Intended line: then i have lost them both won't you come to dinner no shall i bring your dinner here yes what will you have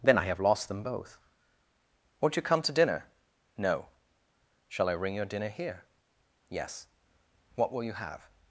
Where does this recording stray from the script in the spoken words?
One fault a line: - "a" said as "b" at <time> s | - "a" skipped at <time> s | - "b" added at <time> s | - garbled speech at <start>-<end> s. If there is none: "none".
- "bring" said as "ring" at 4.9 s